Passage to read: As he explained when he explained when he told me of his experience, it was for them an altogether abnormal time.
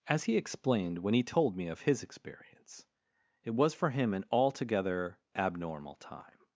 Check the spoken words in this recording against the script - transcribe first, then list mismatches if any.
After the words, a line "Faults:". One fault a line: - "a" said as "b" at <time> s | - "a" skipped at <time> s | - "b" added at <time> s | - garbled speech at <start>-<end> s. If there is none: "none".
As he explained when he told me of his experience, it was for him an altogether abnormal time.
Faults:
- "explained when he" skipped at 1.2 s
- "them" said as "him" at 3.9 s